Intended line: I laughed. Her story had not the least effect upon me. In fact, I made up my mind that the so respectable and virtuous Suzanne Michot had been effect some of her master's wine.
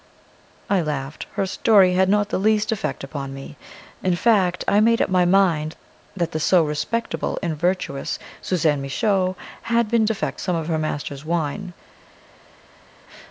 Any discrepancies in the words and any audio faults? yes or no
no